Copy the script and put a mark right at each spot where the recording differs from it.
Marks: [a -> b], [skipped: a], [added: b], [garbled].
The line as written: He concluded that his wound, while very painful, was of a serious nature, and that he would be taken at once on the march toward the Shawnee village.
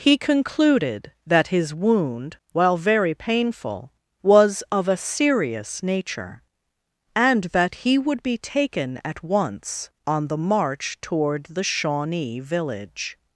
He concluded that his wound, while very painful, was of a serious nature, and that he would be taken at once on the march toward the Shawnee village.